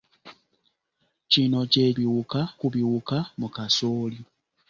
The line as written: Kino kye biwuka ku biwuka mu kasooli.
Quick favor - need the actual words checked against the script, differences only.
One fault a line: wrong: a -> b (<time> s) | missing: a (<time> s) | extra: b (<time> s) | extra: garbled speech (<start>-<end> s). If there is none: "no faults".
no faults